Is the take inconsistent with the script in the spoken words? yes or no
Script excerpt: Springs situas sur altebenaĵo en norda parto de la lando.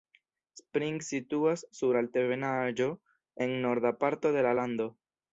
no